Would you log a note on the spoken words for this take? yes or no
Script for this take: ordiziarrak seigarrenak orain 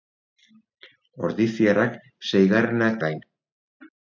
no